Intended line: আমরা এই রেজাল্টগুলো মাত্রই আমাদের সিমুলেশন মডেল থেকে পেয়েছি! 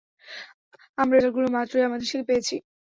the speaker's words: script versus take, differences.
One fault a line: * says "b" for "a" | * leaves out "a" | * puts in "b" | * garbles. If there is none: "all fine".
* leaves out "এই"
* leaves out "সিমুলেশন মডেল"